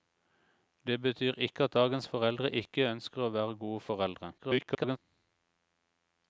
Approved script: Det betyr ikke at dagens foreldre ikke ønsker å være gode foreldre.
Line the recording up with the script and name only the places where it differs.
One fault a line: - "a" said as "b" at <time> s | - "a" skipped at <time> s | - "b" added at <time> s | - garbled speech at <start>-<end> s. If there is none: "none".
- garbled speech at 4.4-5.0 s